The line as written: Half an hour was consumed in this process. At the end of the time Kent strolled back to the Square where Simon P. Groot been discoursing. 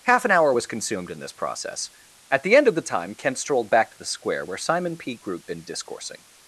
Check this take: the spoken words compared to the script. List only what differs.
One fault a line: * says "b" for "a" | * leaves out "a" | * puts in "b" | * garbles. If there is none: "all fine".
all fine